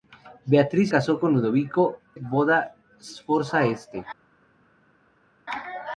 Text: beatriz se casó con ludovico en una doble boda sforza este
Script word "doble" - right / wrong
wrong